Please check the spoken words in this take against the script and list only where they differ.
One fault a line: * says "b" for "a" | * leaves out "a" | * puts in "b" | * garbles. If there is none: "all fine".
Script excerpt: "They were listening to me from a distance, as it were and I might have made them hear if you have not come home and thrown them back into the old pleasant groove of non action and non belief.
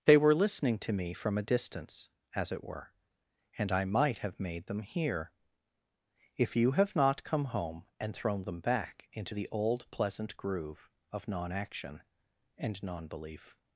all fine